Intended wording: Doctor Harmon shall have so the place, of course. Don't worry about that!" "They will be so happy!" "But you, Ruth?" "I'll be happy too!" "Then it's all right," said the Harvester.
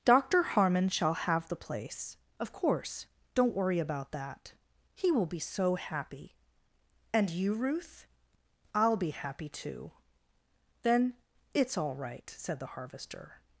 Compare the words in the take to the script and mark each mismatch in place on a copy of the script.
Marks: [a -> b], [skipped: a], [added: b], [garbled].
Doctor Harmon shall have [skipped: so] the place, of course. Don't worry about that!" ["They -> He] will be so happy!" ["But -> And] you, Ruth?" "I'll be happy too!" "Then it's all right," said the Harvester.